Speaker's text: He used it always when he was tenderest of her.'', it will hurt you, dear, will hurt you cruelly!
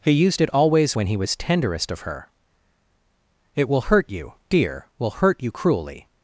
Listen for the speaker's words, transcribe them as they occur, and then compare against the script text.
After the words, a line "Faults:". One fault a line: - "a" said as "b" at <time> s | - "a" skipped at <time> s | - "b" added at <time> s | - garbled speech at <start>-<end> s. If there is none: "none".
He used it always when he was tenderest of her.'', it will hurt you, dear, will hurt you cruelly!
Faults:
none